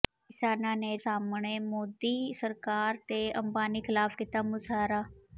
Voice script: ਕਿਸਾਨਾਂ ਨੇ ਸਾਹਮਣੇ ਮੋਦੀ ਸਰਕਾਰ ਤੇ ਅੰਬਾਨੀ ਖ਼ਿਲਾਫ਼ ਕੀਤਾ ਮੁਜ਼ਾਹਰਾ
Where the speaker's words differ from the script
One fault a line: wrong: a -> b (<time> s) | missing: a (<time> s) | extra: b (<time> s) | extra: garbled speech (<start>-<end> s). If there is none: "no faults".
no faults